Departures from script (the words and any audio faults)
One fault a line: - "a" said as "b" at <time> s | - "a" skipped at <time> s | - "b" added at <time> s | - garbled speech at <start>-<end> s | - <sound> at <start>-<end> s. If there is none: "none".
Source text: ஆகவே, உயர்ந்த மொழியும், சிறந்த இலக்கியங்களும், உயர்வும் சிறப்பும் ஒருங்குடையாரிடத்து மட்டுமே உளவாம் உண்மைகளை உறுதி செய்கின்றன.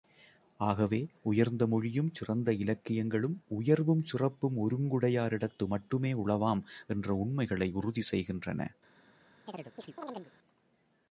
- "என்ற" added at 6.9 s
- chirp at 9.5-10.3 s